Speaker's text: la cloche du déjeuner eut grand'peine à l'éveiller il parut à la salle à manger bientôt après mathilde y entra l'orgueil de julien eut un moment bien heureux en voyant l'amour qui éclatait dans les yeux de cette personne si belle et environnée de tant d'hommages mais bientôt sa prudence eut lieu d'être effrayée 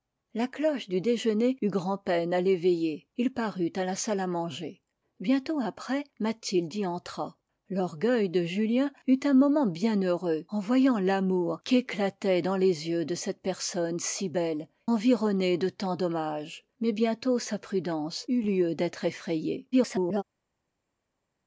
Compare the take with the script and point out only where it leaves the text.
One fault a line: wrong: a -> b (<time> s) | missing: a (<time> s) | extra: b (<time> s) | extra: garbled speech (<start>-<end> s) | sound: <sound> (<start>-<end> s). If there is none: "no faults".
missing: et (14.7 s)
extra: garbled speech (19.7-20.2 s)